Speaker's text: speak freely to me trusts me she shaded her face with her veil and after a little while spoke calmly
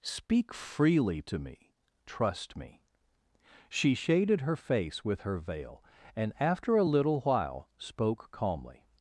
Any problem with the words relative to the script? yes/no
yes